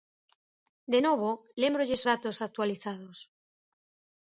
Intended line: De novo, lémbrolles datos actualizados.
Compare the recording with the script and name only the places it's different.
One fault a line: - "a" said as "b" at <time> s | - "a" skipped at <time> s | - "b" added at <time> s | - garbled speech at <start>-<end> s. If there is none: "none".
none